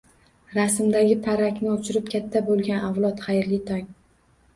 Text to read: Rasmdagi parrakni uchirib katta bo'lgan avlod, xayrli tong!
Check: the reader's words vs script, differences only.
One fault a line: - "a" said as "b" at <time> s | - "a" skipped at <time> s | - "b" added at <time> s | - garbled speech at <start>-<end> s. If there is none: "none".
none